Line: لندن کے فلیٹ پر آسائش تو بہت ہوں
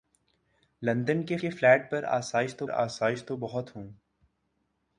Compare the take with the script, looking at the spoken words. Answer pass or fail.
fail